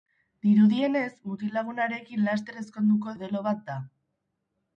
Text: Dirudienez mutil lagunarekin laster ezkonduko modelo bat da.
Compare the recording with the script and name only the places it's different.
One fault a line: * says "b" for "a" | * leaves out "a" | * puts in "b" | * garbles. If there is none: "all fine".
all fine